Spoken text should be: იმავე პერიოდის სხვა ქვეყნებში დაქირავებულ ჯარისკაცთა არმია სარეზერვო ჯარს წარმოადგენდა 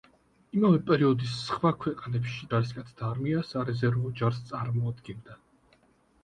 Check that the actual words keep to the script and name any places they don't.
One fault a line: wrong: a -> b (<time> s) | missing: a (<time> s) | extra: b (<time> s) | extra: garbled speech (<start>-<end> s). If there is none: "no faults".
missing: დაქირავებულ (2.5 s)